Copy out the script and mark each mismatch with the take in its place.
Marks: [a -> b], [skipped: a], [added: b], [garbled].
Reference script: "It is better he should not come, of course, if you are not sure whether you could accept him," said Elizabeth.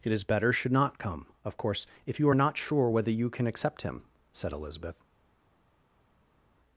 "It is better [skipped: he] should not come, of course, if you are not sure whether you [could -> can] accept him," said Elizabeth.